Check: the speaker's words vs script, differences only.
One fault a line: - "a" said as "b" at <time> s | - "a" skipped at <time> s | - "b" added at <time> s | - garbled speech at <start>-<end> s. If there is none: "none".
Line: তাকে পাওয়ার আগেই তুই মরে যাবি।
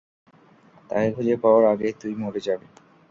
- "খুঁজে" added at 1.1 s